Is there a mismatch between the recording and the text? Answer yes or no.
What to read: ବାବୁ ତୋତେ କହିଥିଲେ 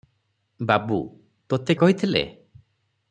no